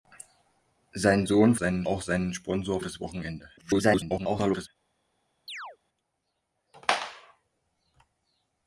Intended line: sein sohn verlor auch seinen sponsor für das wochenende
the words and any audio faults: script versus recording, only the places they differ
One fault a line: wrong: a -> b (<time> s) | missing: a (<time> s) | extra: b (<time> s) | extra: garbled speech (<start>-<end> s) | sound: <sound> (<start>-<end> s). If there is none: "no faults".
wrong: verlor -> seinen (1.5 s)
missing: für (2.8 s)
extra: garbled speech (3.6-4.7 s)
sound: chirp (5.5-5.8 s)